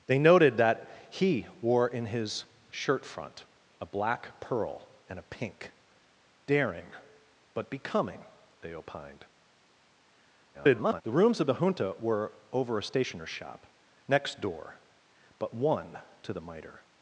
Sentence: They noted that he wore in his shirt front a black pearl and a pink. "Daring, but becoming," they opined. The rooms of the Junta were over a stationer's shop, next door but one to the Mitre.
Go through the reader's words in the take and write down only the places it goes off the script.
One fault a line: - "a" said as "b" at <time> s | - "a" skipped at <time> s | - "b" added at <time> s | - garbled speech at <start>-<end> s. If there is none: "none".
- garbled speech at 10.5-11.0 s